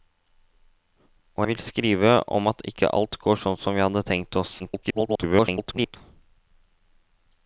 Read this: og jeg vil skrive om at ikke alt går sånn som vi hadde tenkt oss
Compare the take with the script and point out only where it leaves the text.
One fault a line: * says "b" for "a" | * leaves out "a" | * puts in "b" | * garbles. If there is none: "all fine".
* leaves out "jeg"
* garbles